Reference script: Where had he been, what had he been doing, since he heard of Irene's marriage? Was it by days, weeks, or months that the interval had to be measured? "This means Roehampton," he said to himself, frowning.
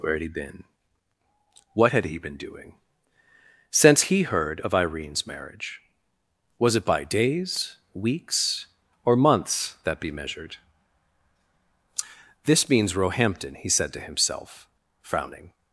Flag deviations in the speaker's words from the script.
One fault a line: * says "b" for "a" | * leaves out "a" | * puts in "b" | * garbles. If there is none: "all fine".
* leaves out "the interval had to"